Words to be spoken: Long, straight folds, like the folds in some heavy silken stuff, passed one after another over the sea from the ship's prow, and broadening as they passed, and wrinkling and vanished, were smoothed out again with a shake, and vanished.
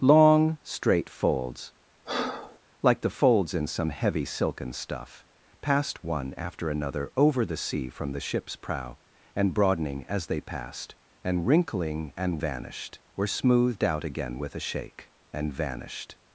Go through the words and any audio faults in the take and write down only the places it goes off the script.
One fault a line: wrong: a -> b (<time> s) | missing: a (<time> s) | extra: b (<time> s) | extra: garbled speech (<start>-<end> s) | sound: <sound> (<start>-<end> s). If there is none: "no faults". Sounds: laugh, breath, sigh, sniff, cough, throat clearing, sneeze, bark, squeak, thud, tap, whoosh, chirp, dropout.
sound: breath (2.1-2.6 s)